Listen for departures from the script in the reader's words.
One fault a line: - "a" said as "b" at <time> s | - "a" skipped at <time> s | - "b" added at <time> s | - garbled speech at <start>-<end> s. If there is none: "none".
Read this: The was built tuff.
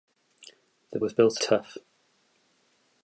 none